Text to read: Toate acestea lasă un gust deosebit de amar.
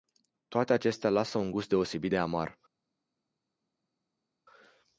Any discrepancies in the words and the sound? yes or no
no